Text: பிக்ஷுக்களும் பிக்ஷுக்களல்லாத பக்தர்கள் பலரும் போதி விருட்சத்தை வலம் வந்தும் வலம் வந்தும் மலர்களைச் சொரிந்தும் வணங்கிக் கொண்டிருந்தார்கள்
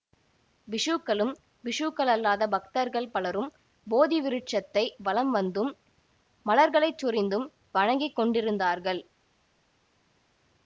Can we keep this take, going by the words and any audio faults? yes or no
no